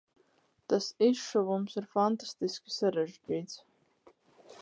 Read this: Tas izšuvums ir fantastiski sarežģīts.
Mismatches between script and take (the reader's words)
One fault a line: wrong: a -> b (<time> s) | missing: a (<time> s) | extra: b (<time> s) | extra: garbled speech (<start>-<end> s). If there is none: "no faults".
no faults